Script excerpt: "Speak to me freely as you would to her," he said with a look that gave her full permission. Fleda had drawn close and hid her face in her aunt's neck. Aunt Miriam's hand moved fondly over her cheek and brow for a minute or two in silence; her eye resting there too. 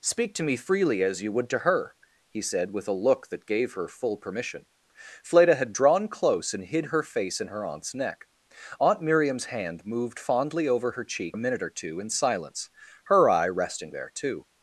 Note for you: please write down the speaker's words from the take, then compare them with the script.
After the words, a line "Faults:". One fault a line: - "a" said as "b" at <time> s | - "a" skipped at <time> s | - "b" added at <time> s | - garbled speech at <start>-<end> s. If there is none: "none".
"Speak to me freely as you would to her," he said with a look that gave her full permission. Fleda had drawn close and hid her face in her aunt's neck. Aunt Miriam's hand moved fondly over her cheek a minute or two in silence; her eye resting there too.
Faults:
- "and brow for" skipped at 11.4 s